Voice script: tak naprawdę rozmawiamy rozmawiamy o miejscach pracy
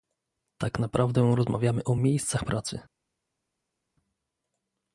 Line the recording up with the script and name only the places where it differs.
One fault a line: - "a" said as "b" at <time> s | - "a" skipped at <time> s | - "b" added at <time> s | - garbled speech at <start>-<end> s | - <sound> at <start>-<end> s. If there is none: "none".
- "rozmawiamy" skipped at 1.9 s